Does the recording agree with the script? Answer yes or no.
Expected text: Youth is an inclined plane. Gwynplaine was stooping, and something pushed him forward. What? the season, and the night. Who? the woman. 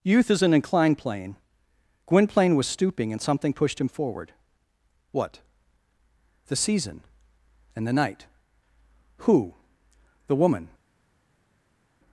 yes